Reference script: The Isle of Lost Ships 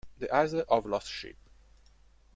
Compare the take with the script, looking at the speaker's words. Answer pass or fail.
pass